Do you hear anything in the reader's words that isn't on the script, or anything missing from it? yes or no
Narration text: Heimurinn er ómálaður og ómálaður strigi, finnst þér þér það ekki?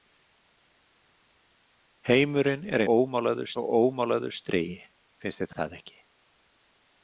no